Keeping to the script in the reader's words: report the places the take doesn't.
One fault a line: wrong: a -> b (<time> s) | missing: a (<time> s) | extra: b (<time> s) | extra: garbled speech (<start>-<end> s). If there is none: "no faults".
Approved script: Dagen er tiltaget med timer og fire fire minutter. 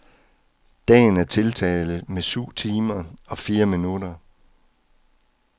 extra: syv (2.2 s)
missing: fire (3.6 s)